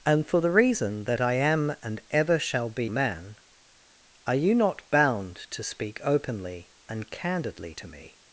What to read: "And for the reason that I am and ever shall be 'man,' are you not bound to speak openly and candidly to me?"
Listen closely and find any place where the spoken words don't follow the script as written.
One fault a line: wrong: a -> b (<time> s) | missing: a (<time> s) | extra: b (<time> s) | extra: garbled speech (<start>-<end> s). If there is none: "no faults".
no faults